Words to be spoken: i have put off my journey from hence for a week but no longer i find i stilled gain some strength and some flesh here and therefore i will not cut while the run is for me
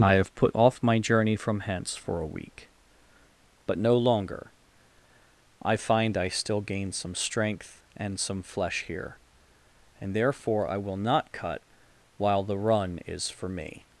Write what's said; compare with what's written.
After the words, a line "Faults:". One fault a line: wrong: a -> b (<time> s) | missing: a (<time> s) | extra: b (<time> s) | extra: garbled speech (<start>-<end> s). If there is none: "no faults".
i have put off my journey from hence for a week but no longer i find i still gain some strength and some flesh here and therefore i will not cut while the run is for me
Faults:
wrong: stilled -> still (6.3 s)